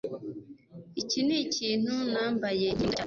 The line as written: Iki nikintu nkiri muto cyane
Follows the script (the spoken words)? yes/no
no